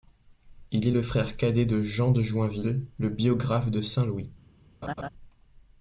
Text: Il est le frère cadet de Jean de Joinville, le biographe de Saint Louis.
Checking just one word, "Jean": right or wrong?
right